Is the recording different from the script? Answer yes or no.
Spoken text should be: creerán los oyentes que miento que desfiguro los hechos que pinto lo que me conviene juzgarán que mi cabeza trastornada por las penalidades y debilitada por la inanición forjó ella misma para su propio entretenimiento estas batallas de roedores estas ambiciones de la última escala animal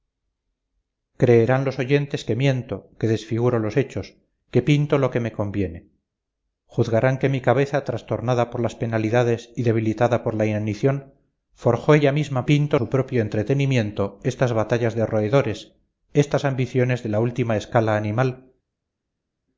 yes